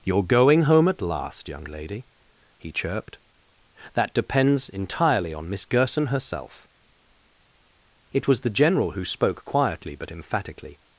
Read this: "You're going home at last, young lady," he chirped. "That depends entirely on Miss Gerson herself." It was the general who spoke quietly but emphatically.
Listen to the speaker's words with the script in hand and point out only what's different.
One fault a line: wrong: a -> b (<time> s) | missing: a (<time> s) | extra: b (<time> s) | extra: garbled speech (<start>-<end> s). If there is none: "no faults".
no faults